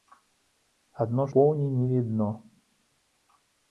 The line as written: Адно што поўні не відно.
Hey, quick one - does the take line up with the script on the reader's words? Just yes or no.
no